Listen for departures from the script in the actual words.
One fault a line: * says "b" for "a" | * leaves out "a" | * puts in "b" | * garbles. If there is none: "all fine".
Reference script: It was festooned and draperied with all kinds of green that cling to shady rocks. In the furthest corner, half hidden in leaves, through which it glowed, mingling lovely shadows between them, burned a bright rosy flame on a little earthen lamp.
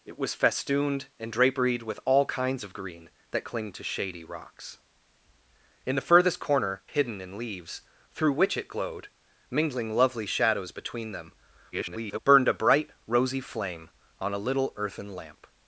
* leaves out "half"
* garbles